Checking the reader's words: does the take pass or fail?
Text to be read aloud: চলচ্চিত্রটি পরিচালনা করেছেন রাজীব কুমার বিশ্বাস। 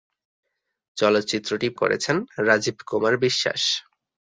fail